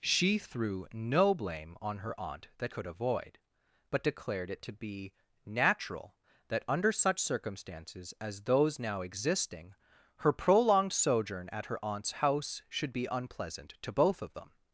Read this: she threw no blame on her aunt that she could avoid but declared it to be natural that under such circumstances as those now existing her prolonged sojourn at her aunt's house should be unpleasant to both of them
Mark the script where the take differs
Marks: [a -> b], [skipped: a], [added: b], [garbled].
she threw no blame on her aunt that [skipped: she] could avoid but declared it to be natural that under such circumstances as those now existing her prolonged sojourn at her aunt's house should be unpleasant to both of them